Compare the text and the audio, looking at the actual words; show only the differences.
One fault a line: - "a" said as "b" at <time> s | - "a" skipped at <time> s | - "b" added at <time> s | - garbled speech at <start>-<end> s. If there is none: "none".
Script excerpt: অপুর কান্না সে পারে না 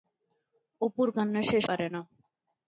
none